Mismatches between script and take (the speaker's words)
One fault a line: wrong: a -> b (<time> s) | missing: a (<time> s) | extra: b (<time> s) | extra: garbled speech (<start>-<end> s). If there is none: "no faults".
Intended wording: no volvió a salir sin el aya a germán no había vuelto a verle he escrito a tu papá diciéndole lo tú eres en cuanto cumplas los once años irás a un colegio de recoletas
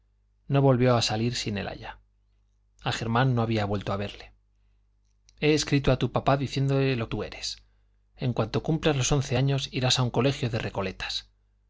no faults